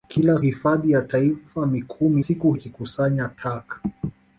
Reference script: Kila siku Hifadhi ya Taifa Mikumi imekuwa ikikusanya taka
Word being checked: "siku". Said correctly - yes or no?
no